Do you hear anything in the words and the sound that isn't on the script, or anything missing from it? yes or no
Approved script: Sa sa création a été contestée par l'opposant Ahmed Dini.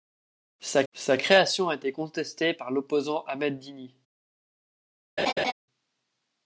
yes